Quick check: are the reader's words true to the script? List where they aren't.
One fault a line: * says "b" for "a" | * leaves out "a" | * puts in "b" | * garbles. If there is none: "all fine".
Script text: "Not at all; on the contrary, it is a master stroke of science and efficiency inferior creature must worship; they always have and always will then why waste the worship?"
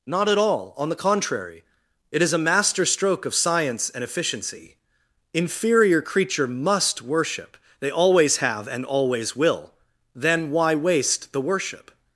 all fine